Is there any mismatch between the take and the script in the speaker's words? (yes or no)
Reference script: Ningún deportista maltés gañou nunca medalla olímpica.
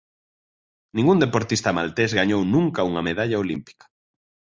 yes